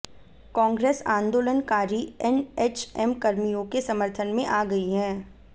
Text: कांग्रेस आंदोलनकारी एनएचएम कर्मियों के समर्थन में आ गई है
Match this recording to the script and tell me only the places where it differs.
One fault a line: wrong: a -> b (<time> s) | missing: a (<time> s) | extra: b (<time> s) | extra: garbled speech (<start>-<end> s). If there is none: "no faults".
no faults